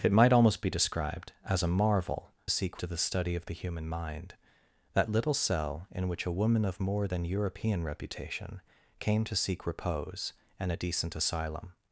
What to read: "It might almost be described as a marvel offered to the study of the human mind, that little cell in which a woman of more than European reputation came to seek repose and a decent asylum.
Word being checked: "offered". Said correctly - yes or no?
no